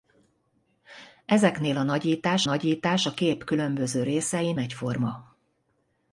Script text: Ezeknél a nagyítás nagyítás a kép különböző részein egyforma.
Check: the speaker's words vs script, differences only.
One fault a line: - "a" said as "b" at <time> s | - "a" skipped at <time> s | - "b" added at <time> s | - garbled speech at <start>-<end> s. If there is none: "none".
none